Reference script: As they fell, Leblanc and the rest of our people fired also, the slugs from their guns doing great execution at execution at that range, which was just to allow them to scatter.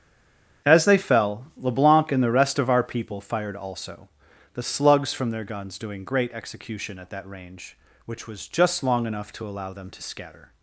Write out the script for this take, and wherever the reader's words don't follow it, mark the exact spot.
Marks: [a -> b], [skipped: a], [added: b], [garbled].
As they fell, Leblanc and the rest of our people fired also, the slugs from their guns doing great execution at [skipped: execution at] that range, which was just [added: long enough] to allow them to scatter.